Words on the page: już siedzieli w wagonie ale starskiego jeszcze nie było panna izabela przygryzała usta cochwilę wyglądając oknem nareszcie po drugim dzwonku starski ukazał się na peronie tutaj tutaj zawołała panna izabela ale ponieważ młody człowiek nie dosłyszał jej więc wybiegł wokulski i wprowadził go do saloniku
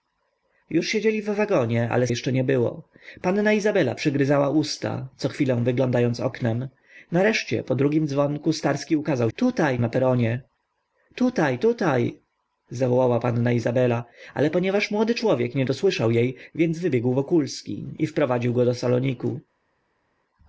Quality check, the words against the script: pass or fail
fail